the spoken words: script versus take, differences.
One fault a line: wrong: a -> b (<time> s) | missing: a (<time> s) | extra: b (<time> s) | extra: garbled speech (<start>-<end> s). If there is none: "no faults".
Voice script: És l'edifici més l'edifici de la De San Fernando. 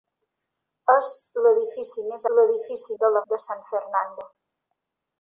no faults